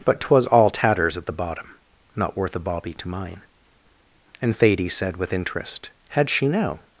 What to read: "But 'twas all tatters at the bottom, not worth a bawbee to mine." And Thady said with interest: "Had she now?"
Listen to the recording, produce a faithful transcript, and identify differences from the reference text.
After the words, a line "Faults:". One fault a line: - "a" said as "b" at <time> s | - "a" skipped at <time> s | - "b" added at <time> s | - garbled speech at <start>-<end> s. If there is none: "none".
"But 'twas all tatters at the bottom, not worth a bawbee to mine." And Thady said with interest: "Had she now?"
Faults:
none